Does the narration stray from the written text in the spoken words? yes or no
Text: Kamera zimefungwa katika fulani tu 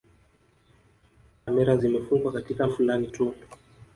no